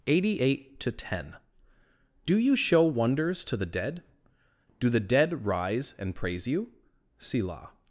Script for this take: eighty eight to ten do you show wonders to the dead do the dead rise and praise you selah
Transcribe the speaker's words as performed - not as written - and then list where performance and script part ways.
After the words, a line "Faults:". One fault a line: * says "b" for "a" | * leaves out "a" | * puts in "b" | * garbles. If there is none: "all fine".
eighty eight to ten do you show wonders to the dead do the dead rise and praise you selah
Faults:
all fine